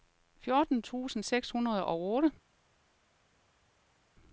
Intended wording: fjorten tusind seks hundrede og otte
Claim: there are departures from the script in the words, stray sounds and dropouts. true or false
false